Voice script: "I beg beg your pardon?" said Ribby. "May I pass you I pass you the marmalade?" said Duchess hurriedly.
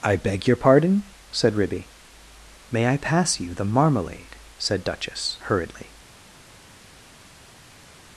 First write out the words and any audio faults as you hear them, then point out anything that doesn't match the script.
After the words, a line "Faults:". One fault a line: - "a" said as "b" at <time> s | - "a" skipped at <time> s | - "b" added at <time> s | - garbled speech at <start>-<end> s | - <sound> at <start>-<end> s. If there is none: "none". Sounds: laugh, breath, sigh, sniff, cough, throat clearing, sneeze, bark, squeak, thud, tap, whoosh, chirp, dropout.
"I beg your pardon?" said Ribby. "May I pass you the marmalade?" said Duchess hurriedly.
Faults:
- "beg" skipped at 0.5 s
- "I pass you" skipped at 3.5 s